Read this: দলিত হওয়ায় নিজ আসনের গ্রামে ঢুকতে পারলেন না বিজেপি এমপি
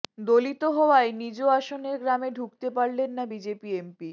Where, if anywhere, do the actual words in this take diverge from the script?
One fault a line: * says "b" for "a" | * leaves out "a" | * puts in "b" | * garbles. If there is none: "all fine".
all fine